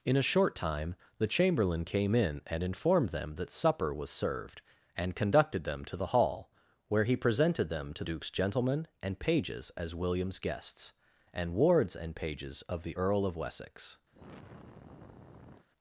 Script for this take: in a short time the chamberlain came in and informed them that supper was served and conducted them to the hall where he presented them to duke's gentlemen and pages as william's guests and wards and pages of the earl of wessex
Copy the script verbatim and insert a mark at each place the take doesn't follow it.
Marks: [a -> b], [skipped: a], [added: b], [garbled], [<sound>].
in a short time the chamberlain came in and informed them that supper was served and conducted them to the hall where he presented them to duke's gentlemen and pages as william's guests and wards and pages of the earl of wessex [sigh]